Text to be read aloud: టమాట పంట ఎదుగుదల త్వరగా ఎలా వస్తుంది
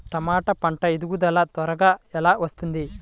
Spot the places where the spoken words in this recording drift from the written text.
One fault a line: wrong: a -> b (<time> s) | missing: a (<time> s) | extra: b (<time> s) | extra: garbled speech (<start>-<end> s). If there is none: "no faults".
no faults